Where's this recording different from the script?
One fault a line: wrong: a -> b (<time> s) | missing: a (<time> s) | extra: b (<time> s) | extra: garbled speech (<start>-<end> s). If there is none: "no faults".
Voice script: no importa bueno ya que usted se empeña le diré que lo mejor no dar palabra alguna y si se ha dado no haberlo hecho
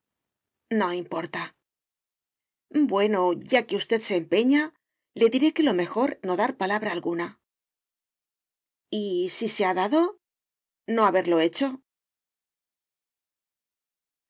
no faults